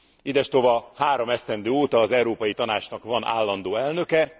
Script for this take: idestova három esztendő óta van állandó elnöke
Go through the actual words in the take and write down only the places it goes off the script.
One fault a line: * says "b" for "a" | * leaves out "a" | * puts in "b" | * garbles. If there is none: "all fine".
* puts in "az európai tanácsnak"